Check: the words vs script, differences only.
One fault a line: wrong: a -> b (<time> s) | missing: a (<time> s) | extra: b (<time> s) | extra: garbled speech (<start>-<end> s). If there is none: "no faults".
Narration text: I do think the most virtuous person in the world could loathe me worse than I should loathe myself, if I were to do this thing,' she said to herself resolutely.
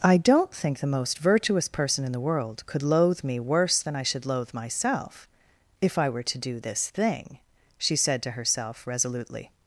wrong: do -> don't (0.2 s)